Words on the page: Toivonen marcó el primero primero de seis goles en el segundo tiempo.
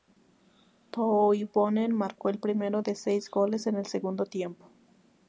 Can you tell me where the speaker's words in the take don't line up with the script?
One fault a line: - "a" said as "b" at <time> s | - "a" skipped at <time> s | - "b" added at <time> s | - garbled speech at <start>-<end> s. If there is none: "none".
- "primero" skipped at 2.8 s